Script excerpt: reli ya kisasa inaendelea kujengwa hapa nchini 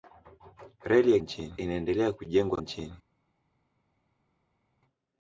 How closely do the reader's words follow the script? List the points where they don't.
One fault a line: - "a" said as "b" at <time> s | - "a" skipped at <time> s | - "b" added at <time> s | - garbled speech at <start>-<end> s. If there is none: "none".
- "kisasa" said as "nchini" at 1.2 s
- "hapa" skipped at 2.6 s